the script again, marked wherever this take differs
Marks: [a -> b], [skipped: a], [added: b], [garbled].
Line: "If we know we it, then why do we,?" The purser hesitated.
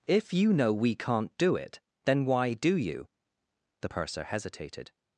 "If [we -> you] know we [added: can't do] it, then why do [we,?" -> you] The purser hesitated.